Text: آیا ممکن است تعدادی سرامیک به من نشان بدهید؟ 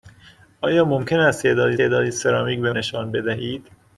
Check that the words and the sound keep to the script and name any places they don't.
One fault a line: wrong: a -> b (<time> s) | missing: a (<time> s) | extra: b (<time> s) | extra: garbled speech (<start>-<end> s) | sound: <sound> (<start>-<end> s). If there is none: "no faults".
extra: تعدادی (1.8 s)
missing: من (2.7 s)